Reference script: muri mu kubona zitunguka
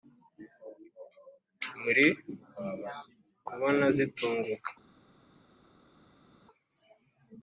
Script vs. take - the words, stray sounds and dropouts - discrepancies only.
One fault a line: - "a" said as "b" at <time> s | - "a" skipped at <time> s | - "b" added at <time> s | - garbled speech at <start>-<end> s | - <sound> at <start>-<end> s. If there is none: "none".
- "mu" skipped at 2.1 s